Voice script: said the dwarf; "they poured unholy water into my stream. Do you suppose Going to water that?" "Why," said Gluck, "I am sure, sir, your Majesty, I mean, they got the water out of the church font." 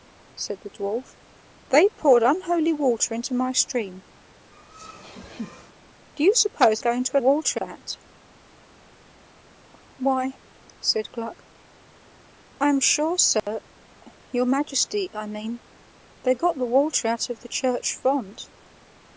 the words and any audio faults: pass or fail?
fail